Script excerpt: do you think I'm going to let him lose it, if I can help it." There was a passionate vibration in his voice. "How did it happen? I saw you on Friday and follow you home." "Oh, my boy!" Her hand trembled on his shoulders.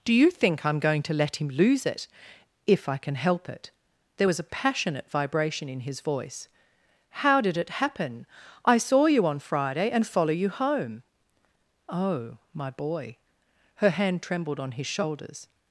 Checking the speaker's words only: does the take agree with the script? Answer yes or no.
yes